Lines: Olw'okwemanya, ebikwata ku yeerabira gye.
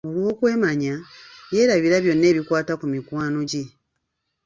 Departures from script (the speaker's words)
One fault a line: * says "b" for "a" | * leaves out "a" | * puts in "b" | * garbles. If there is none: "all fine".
* puts in "yeerabira byonna"
* says "mikwano" for "yeerabira"